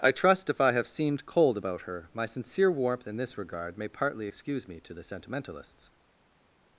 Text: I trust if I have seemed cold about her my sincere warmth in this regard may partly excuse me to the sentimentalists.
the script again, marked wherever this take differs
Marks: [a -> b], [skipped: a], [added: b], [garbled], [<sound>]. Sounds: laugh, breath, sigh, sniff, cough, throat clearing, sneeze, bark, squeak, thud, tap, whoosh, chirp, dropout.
I trust if I have seemed cold about her my sincere warmth in this regard may partly excuse me to the sentimentalists.